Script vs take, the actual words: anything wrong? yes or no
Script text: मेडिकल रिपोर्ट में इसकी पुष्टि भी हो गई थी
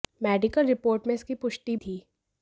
yes